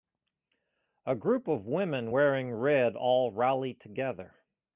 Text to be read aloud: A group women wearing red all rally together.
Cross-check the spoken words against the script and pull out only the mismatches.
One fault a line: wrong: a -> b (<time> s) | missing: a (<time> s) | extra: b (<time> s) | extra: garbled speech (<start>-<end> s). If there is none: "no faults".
extra: of (1.5 s)